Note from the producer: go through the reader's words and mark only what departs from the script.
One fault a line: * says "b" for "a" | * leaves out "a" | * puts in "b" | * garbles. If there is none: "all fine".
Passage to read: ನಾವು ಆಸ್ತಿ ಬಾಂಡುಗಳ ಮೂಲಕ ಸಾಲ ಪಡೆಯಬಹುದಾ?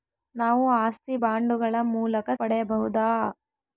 * leaves out "ಸಾಲ"